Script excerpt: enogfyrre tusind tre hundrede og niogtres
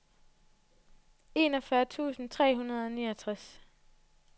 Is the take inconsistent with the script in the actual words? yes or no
no